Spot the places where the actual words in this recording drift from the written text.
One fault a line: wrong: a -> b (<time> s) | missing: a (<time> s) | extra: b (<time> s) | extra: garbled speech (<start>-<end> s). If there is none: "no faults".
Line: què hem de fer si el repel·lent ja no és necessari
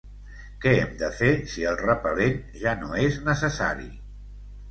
no faults